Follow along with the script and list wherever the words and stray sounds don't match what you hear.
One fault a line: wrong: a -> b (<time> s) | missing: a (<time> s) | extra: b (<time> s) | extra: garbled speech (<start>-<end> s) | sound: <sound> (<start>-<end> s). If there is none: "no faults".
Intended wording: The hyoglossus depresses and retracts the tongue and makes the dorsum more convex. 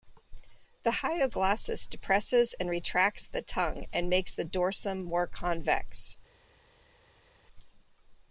no faults